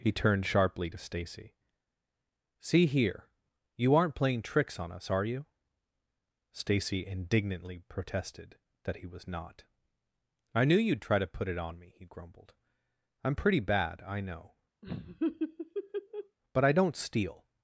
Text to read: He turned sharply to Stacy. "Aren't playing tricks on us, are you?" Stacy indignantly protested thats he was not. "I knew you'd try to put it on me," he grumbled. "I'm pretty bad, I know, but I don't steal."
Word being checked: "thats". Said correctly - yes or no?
no